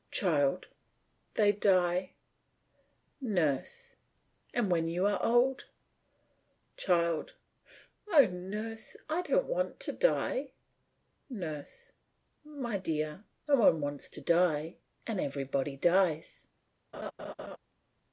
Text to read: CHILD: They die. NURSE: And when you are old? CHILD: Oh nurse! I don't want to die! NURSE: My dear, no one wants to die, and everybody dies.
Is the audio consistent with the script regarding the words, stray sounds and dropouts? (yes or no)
no